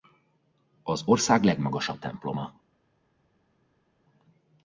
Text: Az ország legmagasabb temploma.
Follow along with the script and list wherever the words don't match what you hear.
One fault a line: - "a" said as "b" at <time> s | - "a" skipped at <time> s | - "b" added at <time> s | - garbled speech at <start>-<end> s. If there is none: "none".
none